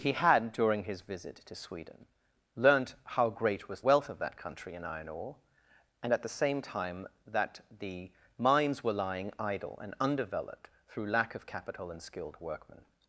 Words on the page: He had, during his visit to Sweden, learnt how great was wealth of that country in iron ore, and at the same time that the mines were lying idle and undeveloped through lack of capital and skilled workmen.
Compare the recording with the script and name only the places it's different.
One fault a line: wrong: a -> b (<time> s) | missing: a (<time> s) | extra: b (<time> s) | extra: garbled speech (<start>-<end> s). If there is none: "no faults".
no faults